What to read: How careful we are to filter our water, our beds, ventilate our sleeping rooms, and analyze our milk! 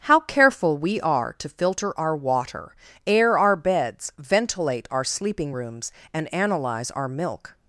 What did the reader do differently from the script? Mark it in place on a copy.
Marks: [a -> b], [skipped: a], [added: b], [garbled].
How careful we are to filter our water, [added: air] our beds, ventilate our sleeping rooms, and analyze our milk!